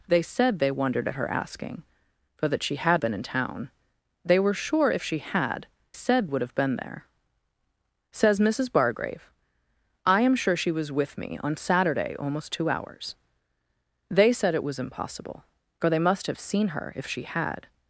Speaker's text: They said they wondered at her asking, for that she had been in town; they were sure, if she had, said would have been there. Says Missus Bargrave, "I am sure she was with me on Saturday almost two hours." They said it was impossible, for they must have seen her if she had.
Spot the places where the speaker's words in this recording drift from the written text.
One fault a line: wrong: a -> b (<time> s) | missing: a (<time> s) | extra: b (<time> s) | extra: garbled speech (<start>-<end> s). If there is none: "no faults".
no faults